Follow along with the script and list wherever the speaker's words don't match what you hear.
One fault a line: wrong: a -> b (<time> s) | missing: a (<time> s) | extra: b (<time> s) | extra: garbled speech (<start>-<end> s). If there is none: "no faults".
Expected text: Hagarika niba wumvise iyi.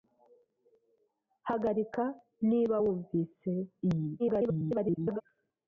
extra: garbled speech (4.2-5.2 s)